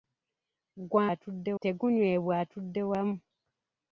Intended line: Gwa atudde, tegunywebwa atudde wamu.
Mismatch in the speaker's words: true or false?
false